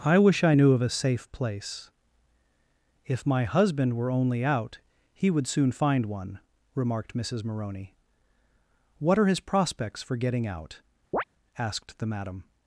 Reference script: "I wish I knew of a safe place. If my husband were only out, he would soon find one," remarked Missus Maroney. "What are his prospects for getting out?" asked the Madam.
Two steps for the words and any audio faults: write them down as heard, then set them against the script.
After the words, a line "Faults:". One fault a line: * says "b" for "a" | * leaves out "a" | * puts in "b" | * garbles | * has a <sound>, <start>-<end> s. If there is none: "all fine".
"I wish I knew of a safe place. If my husband were only out, he would soon find one," remarked Missus Maroney. "What are his prospects for getting out?" asked the Madam.
Faults:
* has a chirp, 11.1-11.2 s